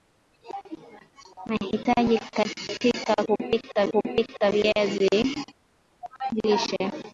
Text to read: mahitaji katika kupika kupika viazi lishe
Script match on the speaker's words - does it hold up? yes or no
yes